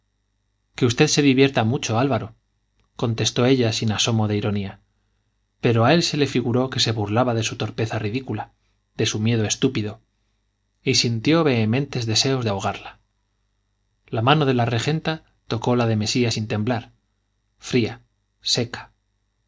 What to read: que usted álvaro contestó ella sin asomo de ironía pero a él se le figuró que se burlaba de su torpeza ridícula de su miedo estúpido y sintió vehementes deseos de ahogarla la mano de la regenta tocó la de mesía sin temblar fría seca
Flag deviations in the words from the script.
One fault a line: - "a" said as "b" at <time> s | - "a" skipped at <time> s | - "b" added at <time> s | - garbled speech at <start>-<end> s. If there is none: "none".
- "se divierta mucho" added at 1.1 s